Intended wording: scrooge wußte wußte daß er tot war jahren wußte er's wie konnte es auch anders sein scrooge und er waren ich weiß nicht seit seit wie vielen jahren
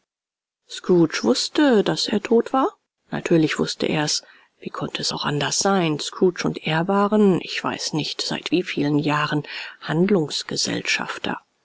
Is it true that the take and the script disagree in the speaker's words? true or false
true